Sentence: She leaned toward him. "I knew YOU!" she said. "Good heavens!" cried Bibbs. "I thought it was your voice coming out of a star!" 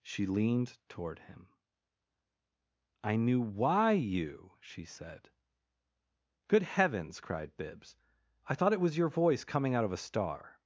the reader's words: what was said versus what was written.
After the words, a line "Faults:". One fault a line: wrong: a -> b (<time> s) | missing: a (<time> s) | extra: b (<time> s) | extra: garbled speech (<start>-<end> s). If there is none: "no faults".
She leaned toward him. "I knew why YOU!" she said. "Good heavens!" cried Bibbs. "I thought it was your voice coming out of a star!"
Faults:
extra: why (3.4 s)